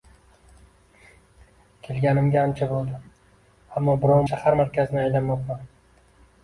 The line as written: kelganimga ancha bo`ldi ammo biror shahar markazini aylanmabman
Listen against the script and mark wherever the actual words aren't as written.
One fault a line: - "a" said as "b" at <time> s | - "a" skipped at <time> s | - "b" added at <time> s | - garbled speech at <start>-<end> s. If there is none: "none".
none